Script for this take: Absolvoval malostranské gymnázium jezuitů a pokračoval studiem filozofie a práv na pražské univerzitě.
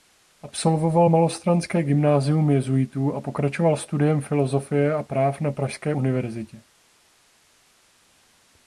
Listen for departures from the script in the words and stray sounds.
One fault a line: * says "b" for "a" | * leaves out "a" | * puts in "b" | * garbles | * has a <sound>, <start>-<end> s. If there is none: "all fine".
all fine